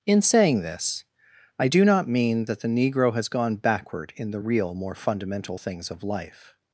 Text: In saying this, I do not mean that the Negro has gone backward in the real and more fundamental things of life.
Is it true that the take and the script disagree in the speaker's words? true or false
true